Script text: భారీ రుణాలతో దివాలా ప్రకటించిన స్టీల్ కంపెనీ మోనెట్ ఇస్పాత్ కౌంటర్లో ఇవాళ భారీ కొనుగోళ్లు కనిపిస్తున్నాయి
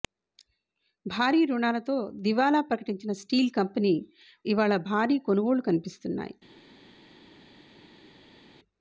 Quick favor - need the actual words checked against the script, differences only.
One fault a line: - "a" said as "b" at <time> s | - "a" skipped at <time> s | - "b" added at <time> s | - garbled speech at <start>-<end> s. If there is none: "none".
- "మోనెట్ ఇస్పాత్ కౌంటర్లో" skipped at 3.9 s